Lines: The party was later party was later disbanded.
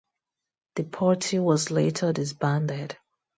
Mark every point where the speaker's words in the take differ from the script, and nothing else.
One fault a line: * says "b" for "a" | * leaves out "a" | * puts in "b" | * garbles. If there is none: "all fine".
* leaves out "party was later"